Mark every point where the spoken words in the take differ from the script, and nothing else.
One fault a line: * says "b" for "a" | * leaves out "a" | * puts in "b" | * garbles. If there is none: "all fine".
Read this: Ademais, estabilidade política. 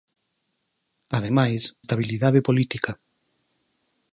all fine